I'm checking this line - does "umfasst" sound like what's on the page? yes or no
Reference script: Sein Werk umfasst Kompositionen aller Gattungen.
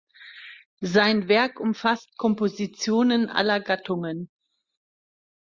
yes